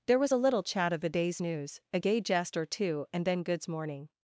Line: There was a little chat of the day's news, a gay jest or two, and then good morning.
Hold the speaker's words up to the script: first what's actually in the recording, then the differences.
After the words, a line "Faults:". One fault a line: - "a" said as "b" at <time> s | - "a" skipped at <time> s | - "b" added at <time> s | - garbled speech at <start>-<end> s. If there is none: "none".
There was a little chat of the day's news, a gay jest or two, and then goods morning.
Faults:
- "good" said as "goods" at 3.4 s